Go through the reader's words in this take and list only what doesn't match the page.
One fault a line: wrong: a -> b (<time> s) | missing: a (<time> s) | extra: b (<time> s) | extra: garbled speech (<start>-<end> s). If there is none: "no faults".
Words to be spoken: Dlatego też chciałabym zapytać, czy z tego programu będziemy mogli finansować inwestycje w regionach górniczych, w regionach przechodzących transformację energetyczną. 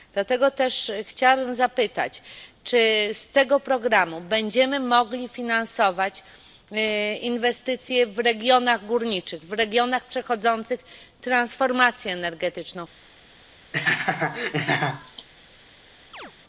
no faults